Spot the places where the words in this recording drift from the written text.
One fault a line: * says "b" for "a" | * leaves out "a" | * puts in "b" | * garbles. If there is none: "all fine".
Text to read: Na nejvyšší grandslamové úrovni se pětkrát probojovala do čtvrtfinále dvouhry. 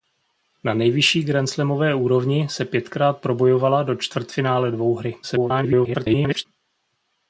* garbles